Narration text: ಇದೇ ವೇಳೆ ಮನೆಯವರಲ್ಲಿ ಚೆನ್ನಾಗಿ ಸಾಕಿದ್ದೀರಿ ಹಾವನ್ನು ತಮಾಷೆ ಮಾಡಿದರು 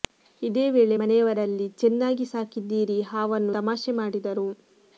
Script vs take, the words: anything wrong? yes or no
no